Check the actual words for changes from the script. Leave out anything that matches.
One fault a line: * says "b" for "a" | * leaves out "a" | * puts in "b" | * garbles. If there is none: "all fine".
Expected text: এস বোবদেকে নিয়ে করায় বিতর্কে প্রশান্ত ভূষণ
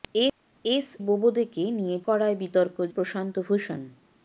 all fine